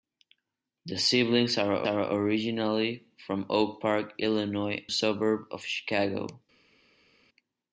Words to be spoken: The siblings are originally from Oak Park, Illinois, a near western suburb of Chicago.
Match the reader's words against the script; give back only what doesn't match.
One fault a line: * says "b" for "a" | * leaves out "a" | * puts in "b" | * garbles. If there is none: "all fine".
* puts in "are"
* leaves out "a near western"